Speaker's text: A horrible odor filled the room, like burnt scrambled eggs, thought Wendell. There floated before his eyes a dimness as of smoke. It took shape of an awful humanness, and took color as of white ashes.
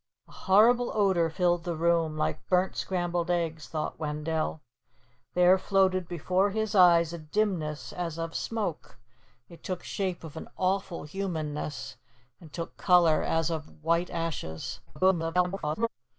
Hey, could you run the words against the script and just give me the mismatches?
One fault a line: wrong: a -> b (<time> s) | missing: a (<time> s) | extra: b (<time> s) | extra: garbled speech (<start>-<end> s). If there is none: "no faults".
extra: garbled speech (14.9-15.9 s)